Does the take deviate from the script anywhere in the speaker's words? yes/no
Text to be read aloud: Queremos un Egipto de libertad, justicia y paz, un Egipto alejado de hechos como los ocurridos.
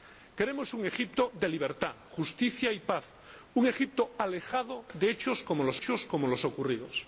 yes